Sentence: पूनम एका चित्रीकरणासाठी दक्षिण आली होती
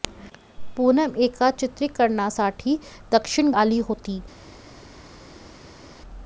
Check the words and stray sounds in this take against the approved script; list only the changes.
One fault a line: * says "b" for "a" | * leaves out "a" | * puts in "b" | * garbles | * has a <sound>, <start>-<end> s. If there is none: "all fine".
all fine